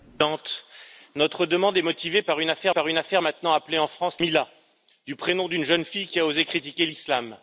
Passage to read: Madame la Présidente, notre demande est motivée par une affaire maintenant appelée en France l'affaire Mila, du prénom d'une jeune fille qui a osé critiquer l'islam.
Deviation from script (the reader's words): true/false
true